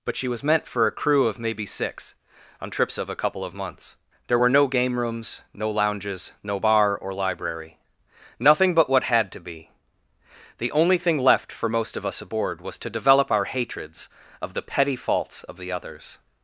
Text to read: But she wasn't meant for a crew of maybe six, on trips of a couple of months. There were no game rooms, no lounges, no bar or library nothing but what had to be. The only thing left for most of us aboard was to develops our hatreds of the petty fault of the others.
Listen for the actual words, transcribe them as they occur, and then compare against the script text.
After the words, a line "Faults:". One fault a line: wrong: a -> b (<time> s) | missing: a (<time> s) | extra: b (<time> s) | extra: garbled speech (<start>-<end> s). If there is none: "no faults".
But she was meant for a crew of maybe six, on trips of a couple of months. There were no game rooms, no lounges, no bar or library nothing but what had to be. The only thing left for most of us aboard was to develop our hatreds of the petty faults of the others.
Faults:
wrong: wasn't -> was (0.3 s)
wrong: develops -> develop (12.9 s)
wrong: fault -> faults (15.0 s)